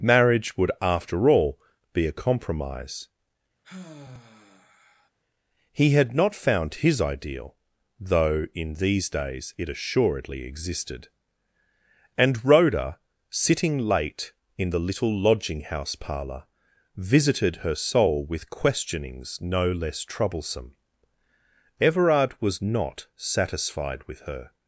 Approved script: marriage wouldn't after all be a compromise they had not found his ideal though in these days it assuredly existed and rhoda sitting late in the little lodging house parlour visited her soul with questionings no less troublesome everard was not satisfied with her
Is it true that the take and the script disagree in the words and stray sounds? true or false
true